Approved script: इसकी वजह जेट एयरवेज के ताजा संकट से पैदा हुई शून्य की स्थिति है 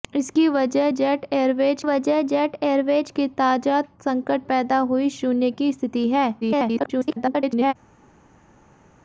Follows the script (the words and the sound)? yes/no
no